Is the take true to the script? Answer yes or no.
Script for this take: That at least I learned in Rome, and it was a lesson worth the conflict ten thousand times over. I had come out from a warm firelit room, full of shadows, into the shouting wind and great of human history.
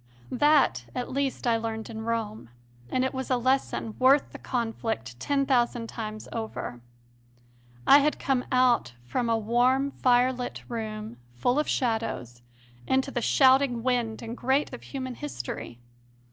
yes